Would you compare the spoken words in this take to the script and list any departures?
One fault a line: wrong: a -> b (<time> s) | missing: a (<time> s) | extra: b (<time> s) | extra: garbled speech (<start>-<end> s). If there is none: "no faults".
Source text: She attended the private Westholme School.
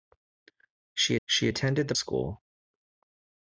extra: she (1.3 s)
missing: private Westholme (1.9 s)